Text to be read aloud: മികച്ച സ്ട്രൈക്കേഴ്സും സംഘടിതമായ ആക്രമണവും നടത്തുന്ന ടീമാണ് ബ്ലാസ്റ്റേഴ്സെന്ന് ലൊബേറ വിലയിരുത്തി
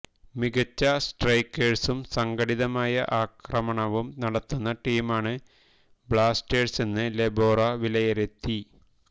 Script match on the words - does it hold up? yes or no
yes